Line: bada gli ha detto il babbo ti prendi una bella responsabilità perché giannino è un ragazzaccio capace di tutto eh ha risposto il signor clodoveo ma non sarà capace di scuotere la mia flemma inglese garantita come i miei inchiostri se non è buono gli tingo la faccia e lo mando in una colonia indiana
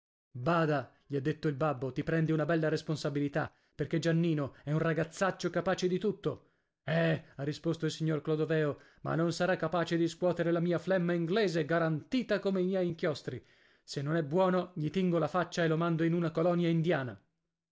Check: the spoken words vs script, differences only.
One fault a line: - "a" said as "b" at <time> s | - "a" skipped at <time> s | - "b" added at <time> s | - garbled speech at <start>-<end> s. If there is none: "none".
none